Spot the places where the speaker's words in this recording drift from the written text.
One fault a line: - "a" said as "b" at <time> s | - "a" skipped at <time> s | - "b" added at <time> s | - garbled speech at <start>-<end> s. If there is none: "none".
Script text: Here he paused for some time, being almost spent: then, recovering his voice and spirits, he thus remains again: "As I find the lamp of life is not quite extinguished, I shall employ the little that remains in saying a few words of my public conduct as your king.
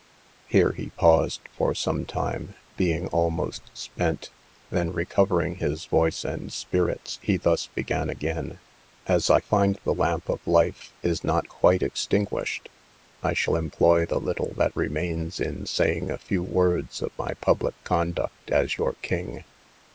- "remains" said as "began" at 7.7 s